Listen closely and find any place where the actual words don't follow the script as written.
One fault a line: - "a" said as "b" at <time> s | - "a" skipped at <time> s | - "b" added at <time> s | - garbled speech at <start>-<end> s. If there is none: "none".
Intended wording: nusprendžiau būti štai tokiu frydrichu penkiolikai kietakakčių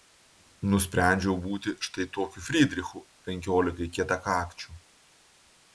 none